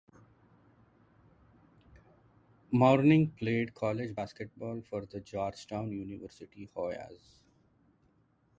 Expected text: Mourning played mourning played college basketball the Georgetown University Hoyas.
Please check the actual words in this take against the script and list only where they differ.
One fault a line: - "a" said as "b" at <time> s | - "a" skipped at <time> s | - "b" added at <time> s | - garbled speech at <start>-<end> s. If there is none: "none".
- "mourning played" skipped at 3.7 s
- "for" added at 4.8 s